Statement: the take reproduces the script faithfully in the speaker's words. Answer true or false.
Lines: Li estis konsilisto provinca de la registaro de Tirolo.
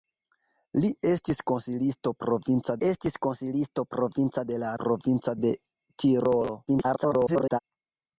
false